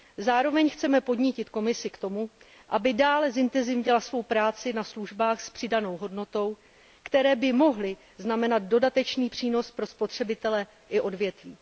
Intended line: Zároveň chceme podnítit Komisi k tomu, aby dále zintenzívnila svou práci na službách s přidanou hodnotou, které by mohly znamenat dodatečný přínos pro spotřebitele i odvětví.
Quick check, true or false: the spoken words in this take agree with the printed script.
true